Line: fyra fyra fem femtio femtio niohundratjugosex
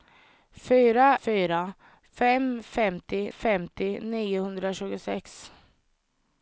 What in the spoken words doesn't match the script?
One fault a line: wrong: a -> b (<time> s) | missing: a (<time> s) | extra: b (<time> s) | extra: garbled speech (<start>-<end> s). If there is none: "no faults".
no faults